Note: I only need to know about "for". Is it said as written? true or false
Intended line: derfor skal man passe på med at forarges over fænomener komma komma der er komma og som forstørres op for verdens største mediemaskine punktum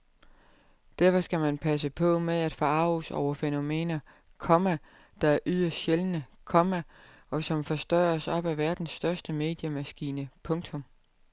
false